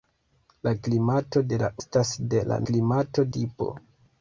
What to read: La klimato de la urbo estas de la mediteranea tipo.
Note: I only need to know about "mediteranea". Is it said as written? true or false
false